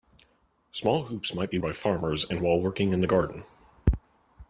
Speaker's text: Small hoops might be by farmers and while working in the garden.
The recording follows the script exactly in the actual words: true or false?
true